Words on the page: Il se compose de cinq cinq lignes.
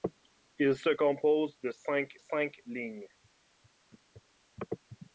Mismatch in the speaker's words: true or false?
false